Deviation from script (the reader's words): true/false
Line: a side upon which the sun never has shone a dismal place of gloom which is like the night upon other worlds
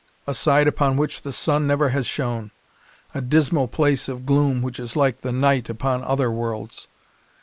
false